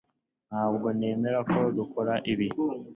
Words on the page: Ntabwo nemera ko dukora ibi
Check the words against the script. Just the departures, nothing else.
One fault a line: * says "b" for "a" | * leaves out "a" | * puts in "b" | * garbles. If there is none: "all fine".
all fine